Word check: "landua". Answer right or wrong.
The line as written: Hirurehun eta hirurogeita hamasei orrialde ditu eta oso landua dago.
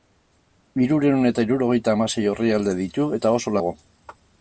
wrong